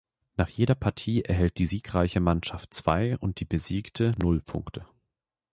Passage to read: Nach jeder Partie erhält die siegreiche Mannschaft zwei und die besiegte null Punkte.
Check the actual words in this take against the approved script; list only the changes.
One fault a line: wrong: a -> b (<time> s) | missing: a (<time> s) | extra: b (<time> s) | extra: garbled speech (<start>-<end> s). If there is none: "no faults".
no faults